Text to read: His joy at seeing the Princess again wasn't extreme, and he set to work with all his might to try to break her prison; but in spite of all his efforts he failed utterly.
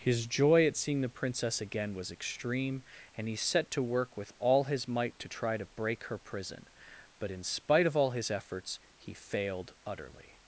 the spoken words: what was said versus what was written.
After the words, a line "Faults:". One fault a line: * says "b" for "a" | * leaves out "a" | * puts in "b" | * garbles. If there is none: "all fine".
His joy at seeing the Princess again was extreme, and he set to work with all his might to try to break her prison; but in spite of all his efforts he failed utterly.
Faults:
* says "was" for "wasn't"